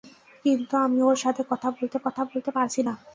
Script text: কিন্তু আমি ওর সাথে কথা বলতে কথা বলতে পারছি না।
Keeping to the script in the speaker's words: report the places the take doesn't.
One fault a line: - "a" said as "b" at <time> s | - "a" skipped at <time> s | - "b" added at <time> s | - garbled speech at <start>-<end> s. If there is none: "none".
none